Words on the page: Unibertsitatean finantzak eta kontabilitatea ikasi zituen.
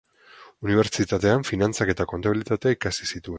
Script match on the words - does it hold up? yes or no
yes